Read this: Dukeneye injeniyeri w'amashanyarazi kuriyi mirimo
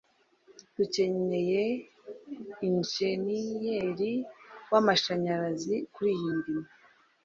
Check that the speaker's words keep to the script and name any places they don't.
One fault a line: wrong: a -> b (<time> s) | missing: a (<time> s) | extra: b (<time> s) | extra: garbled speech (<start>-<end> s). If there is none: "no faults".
no faults